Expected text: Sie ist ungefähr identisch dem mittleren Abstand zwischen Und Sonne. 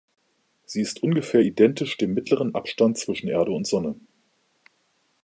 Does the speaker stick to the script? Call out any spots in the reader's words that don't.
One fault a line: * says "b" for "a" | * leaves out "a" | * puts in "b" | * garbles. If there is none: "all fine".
* puts in "Erde"